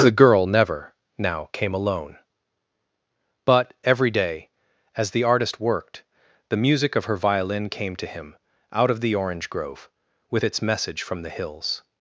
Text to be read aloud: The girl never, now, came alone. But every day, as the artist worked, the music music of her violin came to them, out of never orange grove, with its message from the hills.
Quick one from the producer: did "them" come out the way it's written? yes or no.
no